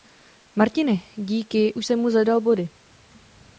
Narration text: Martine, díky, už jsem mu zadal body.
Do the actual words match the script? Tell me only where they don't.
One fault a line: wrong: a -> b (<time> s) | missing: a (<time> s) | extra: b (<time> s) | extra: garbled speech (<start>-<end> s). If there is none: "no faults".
no faults